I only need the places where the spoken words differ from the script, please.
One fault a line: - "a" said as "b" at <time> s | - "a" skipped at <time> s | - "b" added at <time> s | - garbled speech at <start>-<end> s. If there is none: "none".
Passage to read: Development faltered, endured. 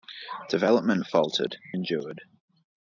none